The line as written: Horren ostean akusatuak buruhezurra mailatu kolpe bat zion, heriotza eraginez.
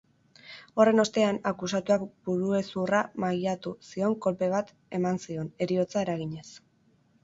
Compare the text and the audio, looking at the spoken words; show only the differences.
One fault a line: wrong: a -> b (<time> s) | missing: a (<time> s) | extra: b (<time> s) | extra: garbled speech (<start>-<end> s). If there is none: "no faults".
extra: zion (3.9 s)
extra: eman (5.0 s)